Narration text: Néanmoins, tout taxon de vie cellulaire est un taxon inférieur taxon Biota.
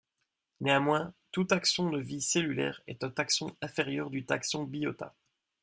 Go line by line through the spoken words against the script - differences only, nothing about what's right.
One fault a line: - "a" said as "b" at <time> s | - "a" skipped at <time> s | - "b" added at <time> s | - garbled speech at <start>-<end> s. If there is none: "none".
- "du" added at 4.1 s